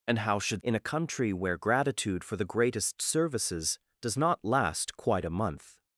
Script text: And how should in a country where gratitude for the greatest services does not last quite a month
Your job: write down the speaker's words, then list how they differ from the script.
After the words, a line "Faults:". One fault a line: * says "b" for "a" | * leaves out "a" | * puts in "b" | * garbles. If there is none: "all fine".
And how should in a country where gratitude for the greatest services does not last quite a month
Faults:
all fine